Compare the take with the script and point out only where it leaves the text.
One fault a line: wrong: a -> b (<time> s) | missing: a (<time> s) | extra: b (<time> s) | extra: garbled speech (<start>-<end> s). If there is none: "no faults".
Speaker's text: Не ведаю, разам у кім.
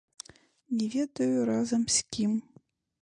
wrong: у -> з (1.9 s)